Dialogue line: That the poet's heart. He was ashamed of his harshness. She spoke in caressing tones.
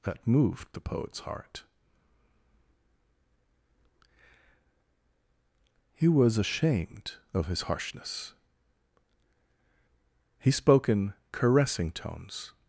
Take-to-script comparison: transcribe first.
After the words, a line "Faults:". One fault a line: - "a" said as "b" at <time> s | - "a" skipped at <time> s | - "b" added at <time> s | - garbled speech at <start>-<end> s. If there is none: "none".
That moved the poet's heart. He was ashamed of his harshness. He spoke in caressing tones.
Faults:
- "moved" added at 0.2 s
- "She" said as "He" at 10.4 s